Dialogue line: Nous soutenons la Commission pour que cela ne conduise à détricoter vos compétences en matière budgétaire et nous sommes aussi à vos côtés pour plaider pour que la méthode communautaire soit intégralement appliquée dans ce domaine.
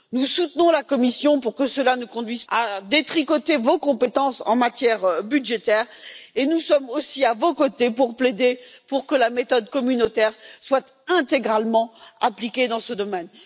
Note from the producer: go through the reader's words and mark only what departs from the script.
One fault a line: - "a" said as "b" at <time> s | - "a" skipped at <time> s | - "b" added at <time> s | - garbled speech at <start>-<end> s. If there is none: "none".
none